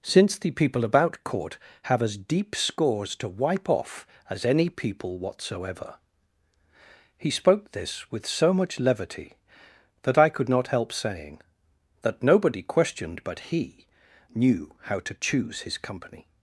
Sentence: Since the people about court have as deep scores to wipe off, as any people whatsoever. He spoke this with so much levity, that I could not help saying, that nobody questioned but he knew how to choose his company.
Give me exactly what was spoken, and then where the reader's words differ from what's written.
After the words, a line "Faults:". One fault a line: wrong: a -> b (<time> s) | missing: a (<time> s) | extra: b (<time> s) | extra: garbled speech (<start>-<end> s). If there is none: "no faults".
Since the people about court have as deep scores to wipe off, as any people whatsoever. He spoke this with so much levity, that I could not help saying, that nobody questioned but he knew how to choose his company.
Faults:
no faults